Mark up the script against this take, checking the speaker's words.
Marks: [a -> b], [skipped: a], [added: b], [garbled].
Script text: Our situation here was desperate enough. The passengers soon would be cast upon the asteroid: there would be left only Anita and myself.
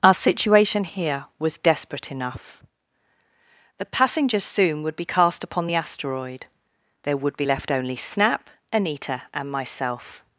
Our situation here was desperate enough. The passengers soon would be cast upon the asteroid: there would be left only [added: Snap] Anita and myself.